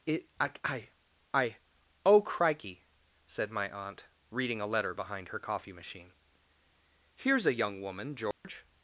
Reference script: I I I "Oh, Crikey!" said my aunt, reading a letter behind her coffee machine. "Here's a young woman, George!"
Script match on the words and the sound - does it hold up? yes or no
no